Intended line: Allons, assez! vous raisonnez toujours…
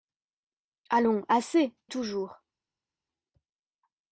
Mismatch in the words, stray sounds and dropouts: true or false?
true